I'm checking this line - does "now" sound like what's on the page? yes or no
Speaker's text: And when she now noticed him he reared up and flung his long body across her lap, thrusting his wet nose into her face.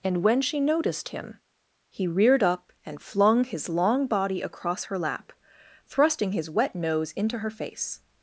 no